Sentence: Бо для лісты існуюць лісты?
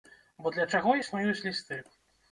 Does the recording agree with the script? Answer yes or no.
no